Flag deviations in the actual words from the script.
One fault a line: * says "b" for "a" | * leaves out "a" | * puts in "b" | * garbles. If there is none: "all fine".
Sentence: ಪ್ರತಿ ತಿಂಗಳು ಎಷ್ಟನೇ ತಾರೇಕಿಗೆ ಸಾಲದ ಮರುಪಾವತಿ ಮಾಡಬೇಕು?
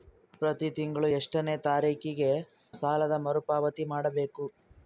all fine